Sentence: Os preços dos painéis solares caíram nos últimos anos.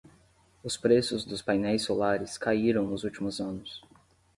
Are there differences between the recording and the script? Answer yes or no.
no